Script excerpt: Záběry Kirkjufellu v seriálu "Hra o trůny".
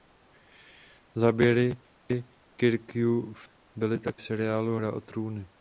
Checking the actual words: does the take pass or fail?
pass